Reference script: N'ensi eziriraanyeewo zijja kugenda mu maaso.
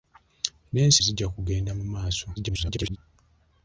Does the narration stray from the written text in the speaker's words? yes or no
yes